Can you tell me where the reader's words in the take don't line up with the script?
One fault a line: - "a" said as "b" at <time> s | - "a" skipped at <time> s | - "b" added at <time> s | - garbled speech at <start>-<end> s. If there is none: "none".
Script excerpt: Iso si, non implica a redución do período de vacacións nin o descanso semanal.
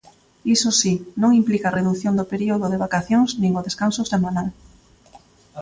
none